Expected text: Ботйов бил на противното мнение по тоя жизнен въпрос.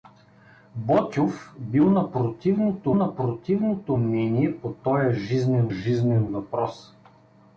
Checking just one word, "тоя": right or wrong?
right